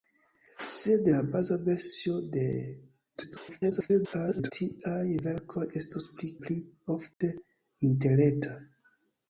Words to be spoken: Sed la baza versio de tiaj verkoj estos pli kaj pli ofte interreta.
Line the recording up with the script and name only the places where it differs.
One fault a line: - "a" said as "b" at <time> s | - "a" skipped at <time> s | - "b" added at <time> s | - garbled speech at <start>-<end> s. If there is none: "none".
- garbled speech at 3.1-4.5 s
- "kaj" skipped at 6.3 s